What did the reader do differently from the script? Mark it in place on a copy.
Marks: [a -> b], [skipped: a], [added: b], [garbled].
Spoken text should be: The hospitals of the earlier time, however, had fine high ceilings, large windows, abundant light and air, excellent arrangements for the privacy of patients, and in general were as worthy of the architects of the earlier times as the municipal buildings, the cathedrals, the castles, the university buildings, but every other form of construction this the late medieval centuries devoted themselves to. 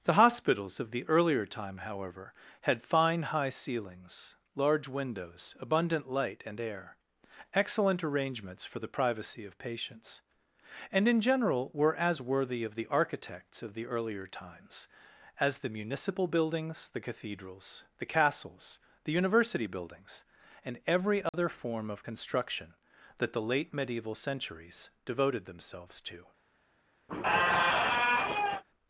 The hospitals of the earlier time, however, had fine high ceilings, large windows, abundant light and air, excellent arrangements for the privacy of patients, and in general were as worthy of the architects of the earlier times as the municipal buildings, the cathedrals, the castles, the university buildings, [but -> and] every other form of construction [this -> that] the late medieval centuries devoted themselves to.